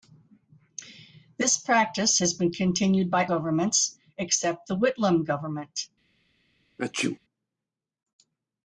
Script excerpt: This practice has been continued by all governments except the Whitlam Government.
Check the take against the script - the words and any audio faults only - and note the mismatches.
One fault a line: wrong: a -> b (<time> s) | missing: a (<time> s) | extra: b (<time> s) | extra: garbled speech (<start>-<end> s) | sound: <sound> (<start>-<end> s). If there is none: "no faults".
missing: all (3.3 s)
sound: sneeze (6.8-7.2 s)